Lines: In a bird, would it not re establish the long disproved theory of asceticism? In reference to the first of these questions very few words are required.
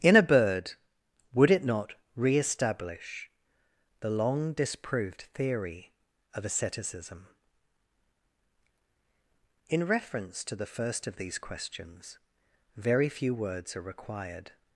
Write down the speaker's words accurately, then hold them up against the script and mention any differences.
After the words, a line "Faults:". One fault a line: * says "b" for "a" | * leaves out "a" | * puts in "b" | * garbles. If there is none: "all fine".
In a bird, would it not re establish the long disproved theory of asceticism? In reference to the first of these questions very few words are required.
Faults:
all fine